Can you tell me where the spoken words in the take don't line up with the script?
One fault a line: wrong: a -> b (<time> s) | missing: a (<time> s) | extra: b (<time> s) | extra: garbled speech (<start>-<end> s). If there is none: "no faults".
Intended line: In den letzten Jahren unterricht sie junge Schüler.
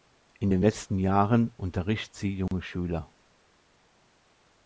no faults